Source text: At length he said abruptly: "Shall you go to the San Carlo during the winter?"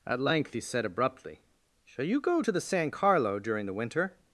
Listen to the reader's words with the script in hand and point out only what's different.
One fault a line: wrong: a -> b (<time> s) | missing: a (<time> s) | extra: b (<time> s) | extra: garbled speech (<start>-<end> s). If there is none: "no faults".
no faults